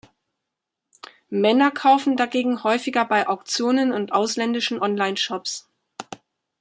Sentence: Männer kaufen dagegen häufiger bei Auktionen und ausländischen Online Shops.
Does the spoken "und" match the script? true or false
true